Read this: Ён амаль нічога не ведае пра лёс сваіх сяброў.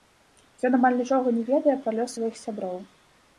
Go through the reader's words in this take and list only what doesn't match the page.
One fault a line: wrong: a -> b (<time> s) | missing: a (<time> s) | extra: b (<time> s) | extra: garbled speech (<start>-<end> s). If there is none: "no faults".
no faults